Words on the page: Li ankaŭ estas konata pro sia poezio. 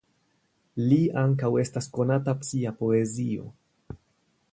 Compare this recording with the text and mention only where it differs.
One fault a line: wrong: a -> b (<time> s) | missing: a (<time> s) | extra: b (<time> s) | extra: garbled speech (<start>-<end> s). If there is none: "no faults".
missing: pro (2.4 s)